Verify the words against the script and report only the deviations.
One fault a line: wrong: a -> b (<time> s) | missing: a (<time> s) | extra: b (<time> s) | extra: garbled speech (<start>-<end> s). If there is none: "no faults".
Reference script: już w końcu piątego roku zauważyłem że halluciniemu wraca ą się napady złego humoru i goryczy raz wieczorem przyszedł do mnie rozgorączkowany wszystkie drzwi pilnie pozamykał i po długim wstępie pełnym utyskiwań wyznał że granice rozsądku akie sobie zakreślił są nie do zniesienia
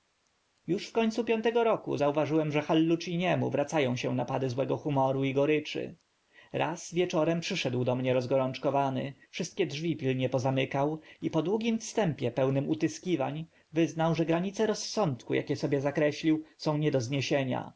no faults